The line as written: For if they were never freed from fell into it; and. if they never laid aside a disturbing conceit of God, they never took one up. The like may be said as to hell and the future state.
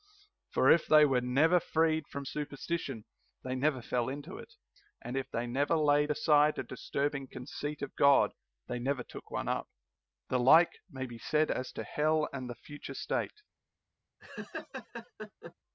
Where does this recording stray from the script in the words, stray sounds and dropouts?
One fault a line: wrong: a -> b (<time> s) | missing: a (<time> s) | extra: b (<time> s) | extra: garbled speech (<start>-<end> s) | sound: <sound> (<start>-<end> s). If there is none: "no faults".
extra: superstition they never (2.2 s)
sound: laugh (14.2-15.5 s)